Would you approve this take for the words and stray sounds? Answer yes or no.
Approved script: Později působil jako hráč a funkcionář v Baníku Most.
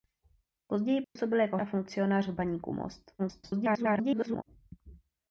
no